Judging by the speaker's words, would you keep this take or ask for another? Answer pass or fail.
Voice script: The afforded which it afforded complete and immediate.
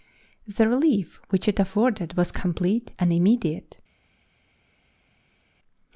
fail